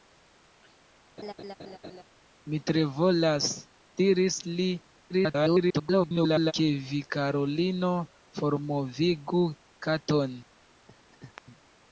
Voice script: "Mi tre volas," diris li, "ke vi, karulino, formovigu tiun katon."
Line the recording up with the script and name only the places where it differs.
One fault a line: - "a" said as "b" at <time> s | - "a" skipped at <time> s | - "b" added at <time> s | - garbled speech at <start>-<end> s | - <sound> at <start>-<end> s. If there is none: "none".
- laugh at 1.2-2.0 s
- garbled speech at 5.1-6.5 s
- "tiun" skipped at 9.4 s
- laugh at 10.9-11.4 s